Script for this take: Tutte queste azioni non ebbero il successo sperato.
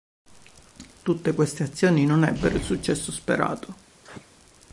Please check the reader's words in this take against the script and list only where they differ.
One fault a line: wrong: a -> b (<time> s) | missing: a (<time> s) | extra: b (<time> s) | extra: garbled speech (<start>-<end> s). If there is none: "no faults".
no faults